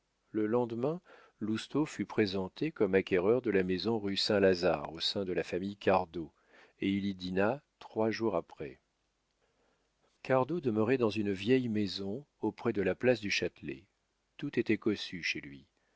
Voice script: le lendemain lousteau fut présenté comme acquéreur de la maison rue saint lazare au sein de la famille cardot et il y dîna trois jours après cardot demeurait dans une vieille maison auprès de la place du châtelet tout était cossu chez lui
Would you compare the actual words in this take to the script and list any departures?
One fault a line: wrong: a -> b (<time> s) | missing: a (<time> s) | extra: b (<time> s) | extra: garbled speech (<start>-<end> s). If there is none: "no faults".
no faults